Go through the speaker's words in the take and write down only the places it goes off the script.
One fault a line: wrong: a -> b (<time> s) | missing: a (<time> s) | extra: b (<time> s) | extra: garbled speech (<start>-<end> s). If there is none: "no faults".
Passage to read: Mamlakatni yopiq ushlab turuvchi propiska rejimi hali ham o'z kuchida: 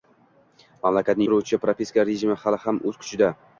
missing: yopiq ushlab (1.3 s)